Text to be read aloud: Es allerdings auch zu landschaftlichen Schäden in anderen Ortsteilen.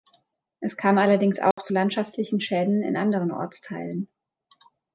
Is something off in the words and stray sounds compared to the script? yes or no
yes